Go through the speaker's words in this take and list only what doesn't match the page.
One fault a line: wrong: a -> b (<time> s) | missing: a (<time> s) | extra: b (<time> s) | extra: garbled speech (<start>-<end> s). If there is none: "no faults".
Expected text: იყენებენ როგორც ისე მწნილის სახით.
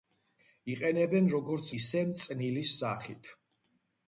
no faults